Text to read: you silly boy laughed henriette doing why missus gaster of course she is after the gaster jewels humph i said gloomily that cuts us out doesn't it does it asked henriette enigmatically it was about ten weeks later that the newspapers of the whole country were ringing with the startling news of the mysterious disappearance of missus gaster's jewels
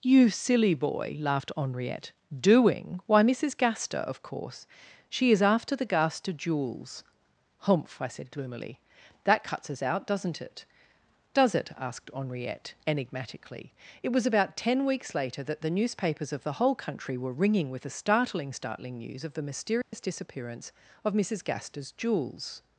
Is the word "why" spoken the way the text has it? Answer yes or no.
yes